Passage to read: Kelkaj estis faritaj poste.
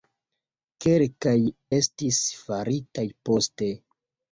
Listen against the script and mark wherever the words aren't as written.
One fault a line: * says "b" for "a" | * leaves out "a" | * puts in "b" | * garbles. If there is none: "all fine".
all fine